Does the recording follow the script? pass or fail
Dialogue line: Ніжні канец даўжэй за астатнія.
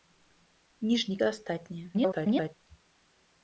fail